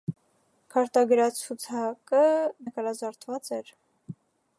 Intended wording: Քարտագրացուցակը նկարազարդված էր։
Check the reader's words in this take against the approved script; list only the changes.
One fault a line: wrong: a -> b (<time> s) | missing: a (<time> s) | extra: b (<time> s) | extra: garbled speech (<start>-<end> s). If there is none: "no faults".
no faults